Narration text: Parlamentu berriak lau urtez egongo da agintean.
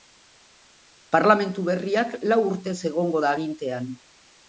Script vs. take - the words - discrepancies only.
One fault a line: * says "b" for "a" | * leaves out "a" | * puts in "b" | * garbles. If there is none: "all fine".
all fine